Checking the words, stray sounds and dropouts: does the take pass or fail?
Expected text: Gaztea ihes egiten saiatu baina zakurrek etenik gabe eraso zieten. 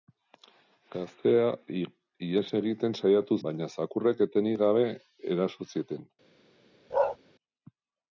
fail